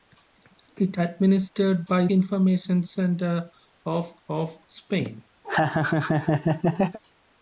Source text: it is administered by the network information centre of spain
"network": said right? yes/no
no